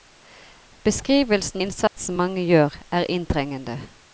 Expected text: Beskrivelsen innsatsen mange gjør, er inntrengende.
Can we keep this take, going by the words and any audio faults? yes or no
no